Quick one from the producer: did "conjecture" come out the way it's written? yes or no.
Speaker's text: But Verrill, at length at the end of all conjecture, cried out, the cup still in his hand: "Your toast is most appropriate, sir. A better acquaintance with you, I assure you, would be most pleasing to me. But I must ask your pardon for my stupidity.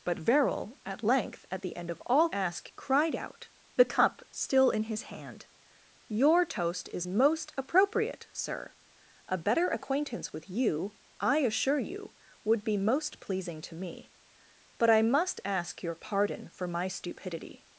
no